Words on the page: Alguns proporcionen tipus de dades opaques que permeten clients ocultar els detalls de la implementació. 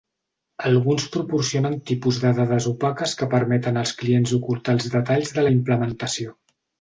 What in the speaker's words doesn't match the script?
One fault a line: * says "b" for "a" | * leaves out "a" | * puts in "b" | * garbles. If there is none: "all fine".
* puts in "als"